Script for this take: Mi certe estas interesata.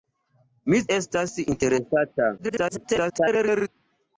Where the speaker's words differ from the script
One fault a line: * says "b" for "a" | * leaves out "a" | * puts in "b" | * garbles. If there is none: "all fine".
* leaves out "certe"
* garbles